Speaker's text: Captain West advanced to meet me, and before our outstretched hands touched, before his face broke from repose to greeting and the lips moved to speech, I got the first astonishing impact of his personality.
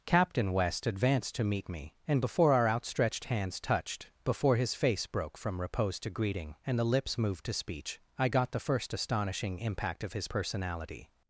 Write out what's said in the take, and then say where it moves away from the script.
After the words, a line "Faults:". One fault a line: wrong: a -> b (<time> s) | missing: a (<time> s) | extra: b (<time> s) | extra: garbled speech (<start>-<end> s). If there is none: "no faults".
Captain West advanced to meet me, and before our outstretched hands touched, before his face broke from repose to greeting and the lips moved to speech, I got the first astonishing impact of his personality.
Faults:
no faults